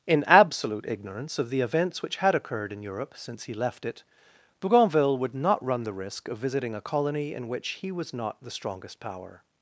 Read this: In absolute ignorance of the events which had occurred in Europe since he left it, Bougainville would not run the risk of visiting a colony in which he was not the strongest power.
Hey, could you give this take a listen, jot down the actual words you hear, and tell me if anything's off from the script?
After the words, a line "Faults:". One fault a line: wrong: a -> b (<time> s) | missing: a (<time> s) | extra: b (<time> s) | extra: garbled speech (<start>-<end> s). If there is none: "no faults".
In absolute ignorance of the events which had occurred in Europe since he left it, Bougainville would not run the risk of visiting a colony in which he was not the strongest power.
Faults:
no faults